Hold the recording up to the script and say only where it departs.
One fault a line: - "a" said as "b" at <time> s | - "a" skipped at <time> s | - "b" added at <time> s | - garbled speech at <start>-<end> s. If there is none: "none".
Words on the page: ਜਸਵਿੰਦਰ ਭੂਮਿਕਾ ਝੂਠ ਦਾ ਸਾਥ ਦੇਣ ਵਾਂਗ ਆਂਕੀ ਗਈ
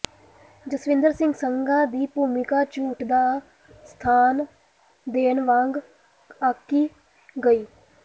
- "ਸਿੰਘ ਸੰਘਾ ਦੀ" added at 1.1 s